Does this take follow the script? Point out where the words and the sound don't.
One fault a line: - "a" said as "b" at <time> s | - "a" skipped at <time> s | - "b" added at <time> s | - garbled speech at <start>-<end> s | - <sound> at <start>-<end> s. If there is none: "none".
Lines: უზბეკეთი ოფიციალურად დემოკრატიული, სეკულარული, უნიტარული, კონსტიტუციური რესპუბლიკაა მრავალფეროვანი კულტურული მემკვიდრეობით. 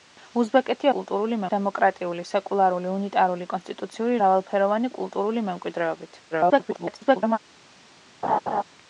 - "ოფიციალურად" said as "კულტურული" at 0.9 s
- "რესპუბლიკაა" skipped at 4.2 s
- garbled speech at 6.3-7.4 s
- laugh at 8.2-8.6 s